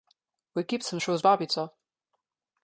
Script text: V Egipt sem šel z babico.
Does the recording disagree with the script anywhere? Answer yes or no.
no